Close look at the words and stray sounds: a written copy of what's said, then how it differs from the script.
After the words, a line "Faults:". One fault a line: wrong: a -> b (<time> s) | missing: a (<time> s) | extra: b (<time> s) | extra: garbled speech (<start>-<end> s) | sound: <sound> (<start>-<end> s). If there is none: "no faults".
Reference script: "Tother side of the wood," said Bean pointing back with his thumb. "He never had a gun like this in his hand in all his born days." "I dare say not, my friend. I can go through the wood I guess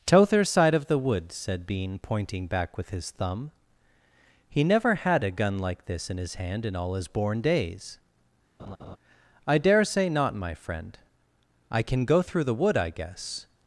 "Tother side of the wood," said Bean pointing back with his thumb. "He never had a gun like this in his hand in all his born days." "I dare say not, my friend. I can go through the wood I guess
Faults:
sound: laugh (8.6-9.0 s)